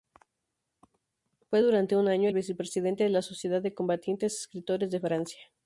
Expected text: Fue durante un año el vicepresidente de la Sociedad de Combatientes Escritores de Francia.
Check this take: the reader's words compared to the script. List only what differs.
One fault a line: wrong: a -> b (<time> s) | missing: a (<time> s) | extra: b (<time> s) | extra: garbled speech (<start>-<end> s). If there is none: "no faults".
no faults